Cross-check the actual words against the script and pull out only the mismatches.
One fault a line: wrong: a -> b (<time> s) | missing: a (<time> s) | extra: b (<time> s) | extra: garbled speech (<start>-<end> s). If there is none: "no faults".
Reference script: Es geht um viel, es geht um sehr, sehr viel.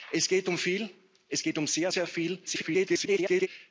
extra: garbled speech (2.5-3.5 s)